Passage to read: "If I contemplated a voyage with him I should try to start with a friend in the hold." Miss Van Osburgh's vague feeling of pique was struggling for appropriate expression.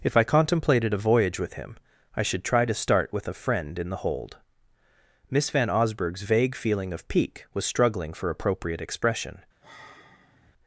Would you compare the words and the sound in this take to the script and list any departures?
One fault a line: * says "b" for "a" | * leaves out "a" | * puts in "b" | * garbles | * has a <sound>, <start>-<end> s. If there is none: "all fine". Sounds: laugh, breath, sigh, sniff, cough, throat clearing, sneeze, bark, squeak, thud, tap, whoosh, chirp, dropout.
* has a sigh, 9.6-10.5 s